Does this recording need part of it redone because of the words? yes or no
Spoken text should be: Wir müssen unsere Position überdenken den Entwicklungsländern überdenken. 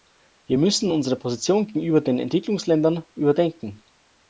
yes